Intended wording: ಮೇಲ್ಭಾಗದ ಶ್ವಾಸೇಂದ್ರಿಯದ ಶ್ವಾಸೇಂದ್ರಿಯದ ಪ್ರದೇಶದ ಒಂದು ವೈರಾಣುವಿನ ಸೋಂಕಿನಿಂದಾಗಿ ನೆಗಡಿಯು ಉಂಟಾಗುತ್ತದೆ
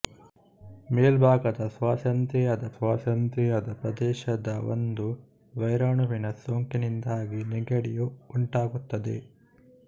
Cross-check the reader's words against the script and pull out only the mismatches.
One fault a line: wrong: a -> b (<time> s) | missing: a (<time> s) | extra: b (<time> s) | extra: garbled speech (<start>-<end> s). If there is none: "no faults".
no faults